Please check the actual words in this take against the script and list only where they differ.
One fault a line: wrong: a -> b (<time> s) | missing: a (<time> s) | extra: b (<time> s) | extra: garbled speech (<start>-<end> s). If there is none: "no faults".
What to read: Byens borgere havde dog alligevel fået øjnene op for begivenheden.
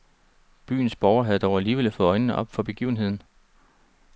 no faults